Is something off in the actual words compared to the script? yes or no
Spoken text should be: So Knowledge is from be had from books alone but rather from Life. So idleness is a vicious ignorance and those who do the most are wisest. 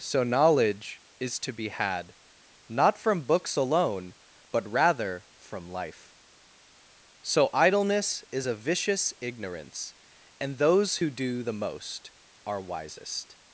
yes